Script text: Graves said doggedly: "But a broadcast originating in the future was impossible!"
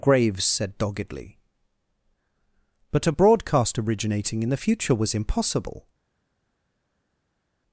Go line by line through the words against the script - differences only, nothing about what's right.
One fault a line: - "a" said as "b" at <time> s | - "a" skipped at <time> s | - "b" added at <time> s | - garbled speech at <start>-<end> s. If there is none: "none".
none